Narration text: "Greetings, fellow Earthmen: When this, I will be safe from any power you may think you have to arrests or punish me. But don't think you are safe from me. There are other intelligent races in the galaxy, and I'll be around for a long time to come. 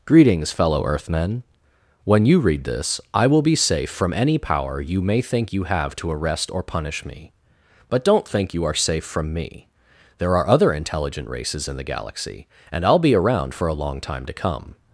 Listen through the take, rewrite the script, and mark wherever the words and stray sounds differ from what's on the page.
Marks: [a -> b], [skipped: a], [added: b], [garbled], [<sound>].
"Greetings, fellow Earthmen: When [added: you read] this, I will be safe from any power you may think you have to [arrests -> arrest] or punish me. But don't think you are safe from me. There are other intelligent races in the galaxy, and I'll be around for a long time to come.